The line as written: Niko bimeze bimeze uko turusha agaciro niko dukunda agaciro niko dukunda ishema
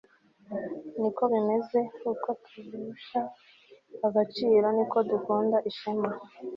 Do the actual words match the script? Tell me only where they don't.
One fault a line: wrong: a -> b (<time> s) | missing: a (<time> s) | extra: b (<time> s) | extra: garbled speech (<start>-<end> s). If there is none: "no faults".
missing: bimeze (1.8 s)
missing: agaciro niko dukunda (5.6 s)